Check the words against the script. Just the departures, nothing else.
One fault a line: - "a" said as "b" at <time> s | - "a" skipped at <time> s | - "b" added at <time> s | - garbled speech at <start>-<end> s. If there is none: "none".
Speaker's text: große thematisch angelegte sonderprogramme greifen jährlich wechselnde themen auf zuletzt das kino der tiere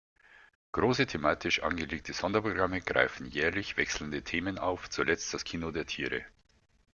none